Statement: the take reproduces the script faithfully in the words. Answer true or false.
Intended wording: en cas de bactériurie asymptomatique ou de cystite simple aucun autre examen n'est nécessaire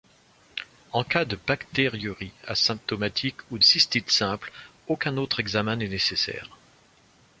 false